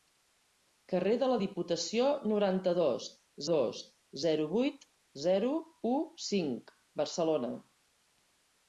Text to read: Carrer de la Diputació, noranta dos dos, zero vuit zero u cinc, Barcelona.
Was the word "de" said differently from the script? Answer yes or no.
no